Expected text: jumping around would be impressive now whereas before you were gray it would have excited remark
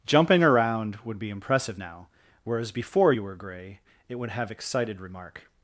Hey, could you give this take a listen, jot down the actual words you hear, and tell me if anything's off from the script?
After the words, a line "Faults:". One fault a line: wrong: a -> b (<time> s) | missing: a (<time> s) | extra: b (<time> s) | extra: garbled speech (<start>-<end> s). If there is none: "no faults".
jumping around would be impressive now whereas before you were gray it would have excited remark
Faults:
no faults